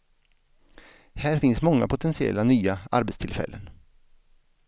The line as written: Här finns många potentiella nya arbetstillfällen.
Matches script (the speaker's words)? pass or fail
pass